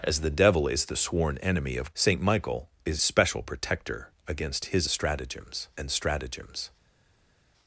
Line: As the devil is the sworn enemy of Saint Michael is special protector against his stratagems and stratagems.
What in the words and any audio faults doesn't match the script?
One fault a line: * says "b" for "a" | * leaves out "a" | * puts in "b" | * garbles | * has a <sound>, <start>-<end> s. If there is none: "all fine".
all fine